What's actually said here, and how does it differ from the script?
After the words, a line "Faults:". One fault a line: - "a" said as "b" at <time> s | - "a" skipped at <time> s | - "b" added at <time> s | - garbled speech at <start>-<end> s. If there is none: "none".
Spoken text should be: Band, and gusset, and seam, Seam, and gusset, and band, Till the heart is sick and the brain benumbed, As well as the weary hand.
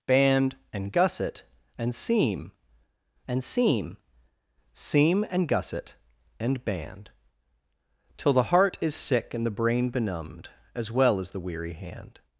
Band, and gusset, and seam and seam, Seam, and gusset, and band, Till the heart is sick and the brain benumbed, As well as the weary hand.
Faults:
- "and seam" added at 3.3 s